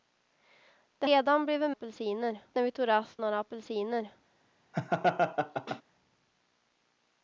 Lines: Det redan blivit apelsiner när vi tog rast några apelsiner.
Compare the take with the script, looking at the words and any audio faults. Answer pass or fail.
fail